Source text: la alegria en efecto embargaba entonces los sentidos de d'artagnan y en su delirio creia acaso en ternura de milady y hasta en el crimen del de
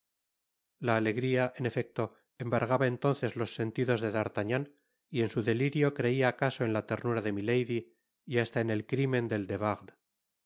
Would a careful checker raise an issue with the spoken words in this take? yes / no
yes